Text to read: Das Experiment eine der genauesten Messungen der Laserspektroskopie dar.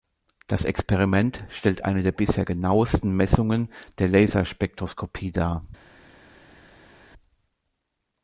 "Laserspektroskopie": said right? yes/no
yes